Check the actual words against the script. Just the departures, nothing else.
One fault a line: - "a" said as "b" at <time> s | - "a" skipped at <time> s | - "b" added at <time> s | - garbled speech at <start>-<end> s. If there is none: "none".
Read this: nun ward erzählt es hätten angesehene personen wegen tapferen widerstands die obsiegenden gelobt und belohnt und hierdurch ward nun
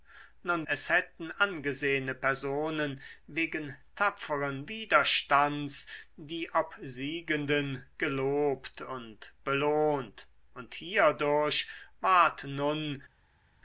- "ward erzählt" skipped at 0.7 s